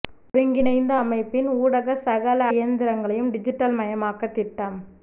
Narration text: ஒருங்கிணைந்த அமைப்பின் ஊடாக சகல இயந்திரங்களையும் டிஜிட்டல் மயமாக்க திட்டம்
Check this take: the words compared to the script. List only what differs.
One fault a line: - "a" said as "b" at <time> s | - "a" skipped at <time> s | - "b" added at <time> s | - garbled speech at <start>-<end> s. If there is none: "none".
none